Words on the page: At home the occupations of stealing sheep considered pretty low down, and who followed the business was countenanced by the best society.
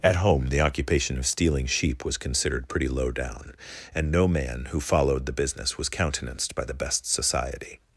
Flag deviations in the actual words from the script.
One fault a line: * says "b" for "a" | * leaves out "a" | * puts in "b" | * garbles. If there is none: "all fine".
* says "occupation" for "occupations"
* puts in "was"
* puts in "no man"